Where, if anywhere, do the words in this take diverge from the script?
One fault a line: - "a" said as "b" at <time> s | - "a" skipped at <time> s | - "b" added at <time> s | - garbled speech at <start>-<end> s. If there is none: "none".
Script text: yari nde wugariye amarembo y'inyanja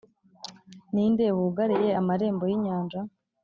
- "yari" said as "ni" at 0.9 s